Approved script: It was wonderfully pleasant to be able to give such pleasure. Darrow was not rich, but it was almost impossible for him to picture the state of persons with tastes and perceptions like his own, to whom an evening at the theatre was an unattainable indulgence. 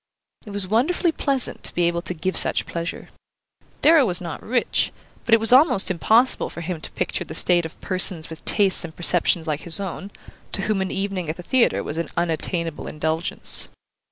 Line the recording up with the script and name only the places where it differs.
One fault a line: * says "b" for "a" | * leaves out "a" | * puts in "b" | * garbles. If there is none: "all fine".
all fine